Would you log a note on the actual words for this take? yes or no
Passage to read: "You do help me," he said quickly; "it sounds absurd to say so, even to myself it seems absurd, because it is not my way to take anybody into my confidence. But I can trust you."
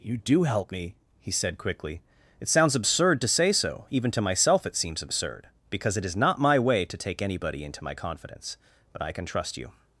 no